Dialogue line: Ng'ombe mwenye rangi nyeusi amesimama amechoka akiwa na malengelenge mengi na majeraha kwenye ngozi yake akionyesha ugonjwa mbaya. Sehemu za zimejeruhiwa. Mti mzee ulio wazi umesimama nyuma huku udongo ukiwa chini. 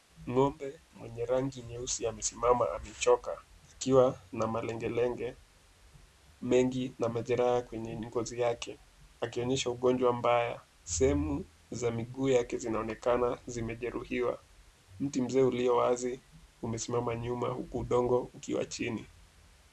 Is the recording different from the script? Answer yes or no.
yes